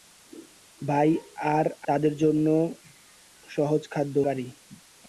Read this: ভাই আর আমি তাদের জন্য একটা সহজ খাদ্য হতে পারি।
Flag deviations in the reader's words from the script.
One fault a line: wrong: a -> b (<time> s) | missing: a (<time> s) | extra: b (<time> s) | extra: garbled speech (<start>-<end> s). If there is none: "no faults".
missing: আমি (1.6 s)
missing: একটা (2.5 s)
missing: হতে (4.2 s)